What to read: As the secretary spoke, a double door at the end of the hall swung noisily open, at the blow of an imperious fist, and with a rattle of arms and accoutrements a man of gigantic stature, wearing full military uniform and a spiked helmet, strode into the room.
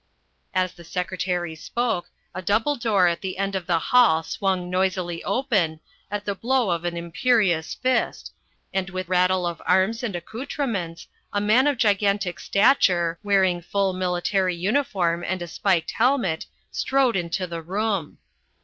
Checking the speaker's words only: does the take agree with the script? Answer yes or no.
no